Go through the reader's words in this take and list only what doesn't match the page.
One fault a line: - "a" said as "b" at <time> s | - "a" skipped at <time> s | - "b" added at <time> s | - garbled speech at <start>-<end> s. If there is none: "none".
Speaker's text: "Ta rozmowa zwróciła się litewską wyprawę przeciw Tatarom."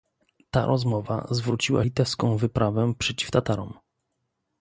- "się" skipped at 1.8 s